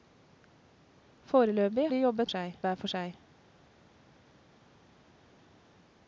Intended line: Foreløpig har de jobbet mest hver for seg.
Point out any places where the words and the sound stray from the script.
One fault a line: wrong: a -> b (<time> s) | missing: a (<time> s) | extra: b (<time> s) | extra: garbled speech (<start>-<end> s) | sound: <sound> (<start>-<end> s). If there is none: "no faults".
missing: har (1.9 s)
wrong: mest -> seg (2.3 s)